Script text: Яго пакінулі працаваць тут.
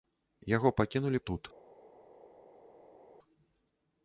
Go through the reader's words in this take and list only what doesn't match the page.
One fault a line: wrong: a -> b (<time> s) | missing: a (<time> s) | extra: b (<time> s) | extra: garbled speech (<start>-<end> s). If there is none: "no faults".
missing: працаваць (1.2 s)